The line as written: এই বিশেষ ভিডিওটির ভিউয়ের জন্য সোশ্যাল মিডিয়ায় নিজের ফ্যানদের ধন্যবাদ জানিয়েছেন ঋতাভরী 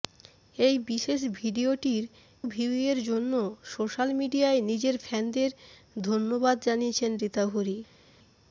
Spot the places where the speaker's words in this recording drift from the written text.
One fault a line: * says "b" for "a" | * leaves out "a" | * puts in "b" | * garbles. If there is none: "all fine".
all fine